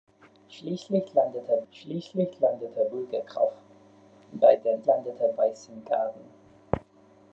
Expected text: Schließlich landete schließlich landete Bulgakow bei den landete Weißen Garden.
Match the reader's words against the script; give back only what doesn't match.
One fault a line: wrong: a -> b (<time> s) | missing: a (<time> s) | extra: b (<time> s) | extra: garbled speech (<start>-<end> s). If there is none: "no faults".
no faults